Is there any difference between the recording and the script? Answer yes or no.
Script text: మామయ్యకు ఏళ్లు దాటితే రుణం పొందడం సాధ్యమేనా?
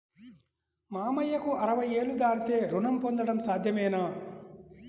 yes